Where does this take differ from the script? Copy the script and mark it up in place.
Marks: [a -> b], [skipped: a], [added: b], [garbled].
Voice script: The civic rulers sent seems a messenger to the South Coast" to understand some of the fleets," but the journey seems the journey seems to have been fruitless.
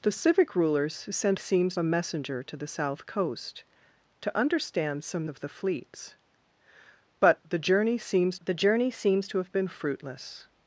The civic rulers sent seems a messenger to the South Coast" to understand some of the fleets," but the journey seems the journey seems to have been fruitless.